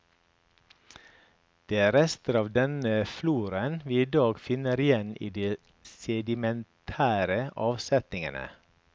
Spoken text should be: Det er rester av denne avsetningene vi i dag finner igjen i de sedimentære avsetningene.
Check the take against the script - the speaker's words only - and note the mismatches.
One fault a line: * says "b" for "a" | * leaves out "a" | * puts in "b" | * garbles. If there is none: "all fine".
* says "floraen" for "avsetningene"